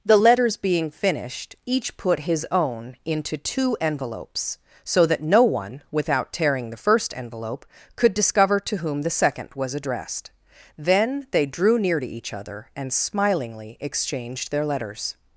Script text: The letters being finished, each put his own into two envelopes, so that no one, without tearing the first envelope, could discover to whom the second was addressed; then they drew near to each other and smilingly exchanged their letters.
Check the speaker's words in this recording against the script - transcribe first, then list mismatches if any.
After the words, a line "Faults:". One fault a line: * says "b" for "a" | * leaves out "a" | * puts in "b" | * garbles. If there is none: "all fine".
The letters being finished, each put his own into two envelopes, so that no one, without tearing the first envelope, could discover to whom the second was addressed; then they drew near to each other and smilingly exchanged their letters.
Faults:
all fine